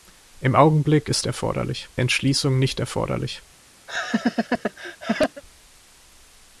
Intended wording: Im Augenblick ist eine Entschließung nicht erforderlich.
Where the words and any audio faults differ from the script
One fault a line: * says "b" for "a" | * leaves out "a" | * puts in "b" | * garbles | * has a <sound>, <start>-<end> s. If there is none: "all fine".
* says "erforderlich" for "eine"
* has a laugh, 3.9-5.4 s